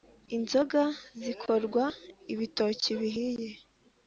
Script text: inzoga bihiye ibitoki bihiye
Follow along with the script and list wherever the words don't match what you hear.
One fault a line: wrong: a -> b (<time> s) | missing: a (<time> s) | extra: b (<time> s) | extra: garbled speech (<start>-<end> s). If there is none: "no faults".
wrong: bihiye -> zikorwa (1.2 s)